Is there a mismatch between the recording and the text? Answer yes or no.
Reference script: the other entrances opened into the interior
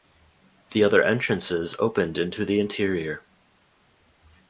no